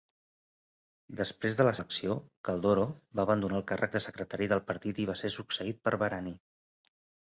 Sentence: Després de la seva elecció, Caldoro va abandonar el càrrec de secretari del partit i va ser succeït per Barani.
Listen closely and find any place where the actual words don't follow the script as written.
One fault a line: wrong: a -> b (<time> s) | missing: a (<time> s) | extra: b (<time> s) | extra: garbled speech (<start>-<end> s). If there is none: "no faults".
missing: seva (1.7 s)